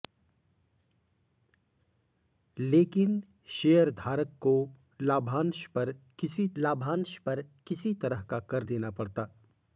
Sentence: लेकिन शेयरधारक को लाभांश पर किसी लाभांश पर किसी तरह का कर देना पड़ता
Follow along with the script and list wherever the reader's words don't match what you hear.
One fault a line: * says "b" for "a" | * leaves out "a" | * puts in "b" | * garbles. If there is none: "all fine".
all fine